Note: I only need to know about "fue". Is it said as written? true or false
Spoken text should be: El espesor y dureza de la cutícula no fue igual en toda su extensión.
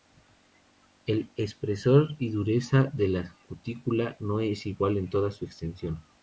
false